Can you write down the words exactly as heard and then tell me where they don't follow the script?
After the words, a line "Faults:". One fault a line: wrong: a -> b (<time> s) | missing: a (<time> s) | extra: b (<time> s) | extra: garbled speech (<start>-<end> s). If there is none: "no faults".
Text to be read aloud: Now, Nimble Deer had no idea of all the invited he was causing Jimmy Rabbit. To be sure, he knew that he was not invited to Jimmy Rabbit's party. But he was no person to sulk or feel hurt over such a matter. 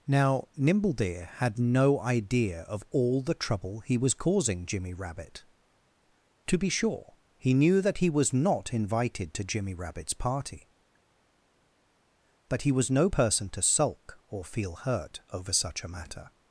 Now, Nimble Deer had no idea of all the trouble he was causing Jimmy Rabbit. To be sure, he knew that he was not invited to Jimmy Rabbit's party. But he was no person to sulk or feel hurt over such a matter.
Faults:
wrong: invited -> trouble (3.3 s)